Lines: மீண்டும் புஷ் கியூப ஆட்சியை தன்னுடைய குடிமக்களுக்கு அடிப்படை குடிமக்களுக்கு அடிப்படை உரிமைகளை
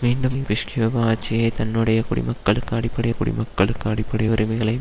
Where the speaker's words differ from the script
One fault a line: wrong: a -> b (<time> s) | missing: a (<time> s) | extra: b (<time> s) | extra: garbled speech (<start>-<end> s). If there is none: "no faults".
no faults